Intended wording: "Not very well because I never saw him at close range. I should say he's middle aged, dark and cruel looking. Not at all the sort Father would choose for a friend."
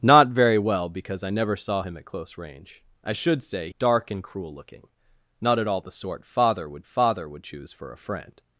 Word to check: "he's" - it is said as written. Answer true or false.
false